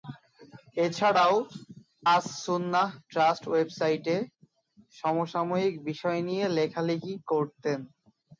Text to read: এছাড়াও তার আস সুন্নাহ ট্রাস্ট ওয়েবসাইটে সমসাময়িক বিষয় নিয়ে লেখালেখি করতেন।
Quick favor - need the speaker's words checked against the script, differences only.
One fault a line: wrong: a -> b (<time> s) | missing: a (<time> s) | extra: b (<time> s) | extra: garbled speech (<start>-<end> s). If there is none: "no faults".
missing: তার (1.4 s)